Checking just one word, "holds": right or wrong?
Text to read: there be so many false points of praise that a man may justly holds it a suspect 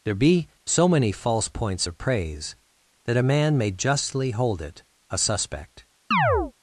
wrong